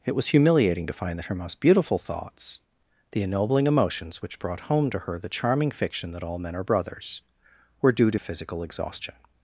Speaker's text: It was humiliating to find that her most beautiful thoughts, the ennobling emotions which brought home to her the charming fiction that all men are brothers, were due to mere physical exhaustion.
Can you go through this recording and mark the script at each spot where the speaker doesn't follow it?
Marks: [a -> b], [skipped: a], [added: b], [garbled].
It was humiliating to find that her most beautiful thoughts, the ennobling emotions which brought home to her the charming fiction that all men are brothers, were due to [skipped: mere] physical exhaustion.